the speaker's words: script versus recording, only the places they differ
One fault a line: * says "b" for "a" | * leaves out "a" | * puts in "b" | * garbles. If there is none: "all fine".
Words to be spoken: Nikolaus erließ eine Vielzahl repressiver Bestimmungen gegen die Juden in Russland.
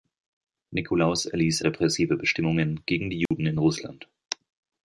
* leaves out "eine Vielzahl"